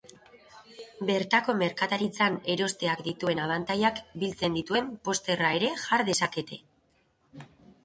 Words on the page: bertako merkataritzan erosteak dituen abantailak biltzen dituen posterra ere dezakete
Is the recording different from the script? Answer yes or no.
yes